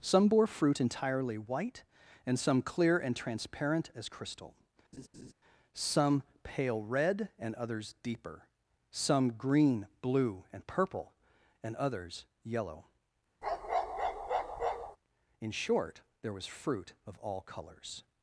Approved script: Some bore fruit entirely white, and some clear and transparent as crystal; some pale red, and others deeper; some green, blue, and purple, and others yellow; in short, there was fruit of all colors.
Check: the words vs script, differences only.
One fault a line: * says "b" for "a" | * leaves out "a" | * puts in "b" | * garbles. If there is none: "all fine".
all fine